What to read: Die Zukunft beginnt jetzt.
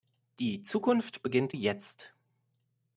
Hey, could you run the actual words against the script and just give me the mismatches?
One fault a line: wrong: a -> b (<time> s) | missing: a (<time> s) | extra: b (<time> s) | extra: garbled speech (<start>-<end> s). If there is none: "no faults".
no faults